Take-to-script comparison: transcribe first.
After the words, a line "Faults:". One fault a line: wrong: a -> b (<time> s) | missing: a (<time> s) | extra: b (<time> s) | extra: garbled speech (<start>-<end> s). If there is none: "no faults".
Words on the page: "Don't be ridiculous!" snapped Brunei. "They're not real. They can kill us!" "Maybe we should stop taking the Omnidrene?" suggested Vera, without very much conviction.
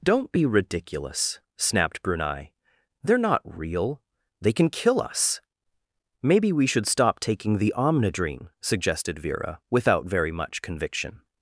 "Don't be ridiculous!" snapped Brunei. "They're not real. They can kill us!" "Maybe we should stop taking the Omnidrene?" suggested Vera, without very much conviction.
Faults:
no faults